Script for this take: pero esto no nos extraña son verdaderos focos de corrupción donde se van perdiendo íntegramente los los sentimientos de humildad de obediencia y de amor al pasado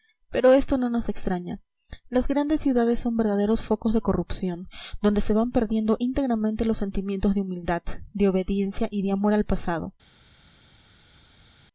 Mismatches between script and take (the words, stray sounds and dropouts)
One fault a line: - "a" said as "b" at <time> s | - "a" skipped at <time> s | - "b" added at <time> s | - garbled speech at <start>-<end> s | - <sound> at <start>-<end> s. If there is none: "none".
- "las grandes ciudades" added at 2.1 s
- "los" skipped at 6.8 s